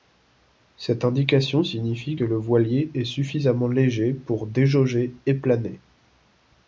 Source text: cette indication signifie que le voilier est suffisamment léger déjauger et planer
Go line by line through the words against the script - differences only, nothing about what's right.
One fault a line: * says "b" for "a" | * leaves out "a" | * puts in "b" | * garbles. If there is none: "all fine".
* puts in "pour"